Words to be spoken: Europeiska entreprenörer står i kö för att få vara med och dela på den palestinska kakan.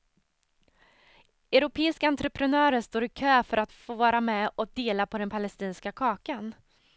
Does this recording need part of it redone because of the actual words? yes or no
no